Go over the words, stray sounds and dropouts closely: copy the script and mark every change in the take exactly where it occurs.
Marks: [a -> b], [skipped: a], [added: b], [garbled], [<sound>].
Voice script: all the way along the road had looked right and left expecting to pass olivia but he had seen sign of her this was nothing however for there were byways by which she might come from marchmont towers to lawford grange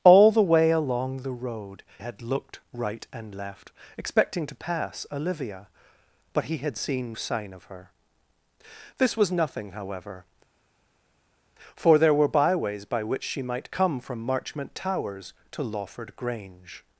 all the way along the road had looked right and left expecting to pass olivia but he had seen sign of her this was nothing however for there were byways by which she might come from marchmont towers to lawford grange